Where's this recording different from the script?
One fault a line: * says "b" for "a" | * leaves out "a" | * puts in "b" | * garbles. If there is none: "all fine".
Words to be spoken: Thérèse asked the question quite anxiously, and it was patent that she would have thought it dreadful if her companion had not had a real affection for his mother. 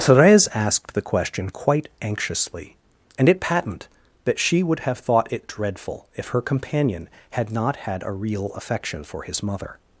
* leaves out "was"